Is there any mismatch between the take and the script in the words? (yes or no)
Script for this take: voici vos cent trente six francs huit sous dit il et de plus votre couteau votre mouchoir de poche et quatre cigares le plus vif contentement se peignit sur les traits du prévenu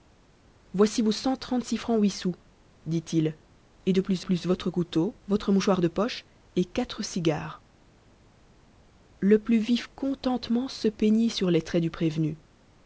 yes